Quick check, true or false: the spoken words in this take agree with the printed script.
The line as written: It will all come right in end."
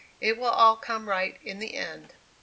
false